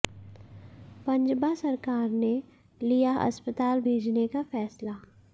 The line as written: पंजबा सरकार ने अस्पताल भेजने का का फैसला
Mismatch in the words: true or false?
true